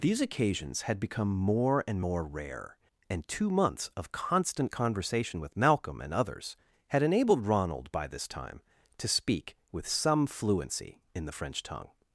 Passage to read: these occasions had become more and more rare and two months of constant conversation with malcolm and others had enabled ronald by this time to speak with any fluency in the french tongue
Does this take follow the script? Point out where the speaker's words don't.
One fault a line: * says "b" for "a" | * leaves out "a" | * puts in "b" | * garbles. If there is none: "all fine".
* says "some" for "any"